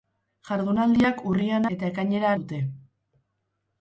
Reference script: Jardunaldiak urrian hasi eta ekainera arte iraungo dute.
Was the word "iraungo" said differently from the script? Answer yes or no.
yes